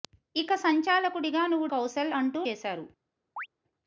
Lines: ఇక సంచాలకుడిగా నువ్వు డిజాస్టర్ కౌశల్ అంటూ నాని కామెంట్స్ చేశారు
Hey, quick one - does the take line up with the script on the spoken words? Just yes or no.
no